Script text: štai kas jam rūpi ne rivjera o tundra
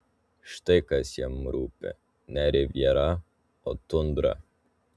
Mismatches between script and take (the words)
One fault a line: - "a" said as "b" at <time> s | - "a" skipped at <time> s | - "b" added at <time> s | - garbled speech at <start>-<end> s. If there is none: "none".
none